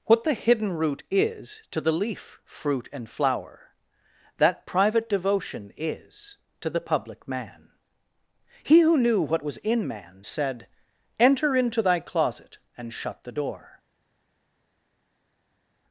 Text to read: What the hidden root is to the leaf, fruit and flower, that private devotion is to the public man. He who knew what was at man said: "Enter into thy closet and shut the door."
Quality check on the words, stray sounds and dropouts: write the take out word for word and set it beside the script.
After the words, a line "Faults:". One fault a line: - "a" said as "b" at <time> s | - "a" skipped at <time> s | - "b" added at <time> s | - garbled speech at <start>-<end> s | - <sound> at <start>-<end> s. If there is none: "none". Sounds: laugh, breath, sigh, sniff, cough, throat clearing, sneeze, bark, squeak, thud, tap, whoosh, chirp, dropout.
What the hidden root is to the leaf, fruit and flower, that private devotion is to the public man. He who knew what was in man said: "Enter into thy closet and shut the door."
Faults:
- "at" said as "in" at 9.6 s